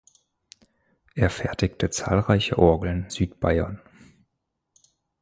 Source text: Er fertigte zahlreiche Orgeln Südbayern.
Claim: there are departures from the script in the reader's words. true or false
false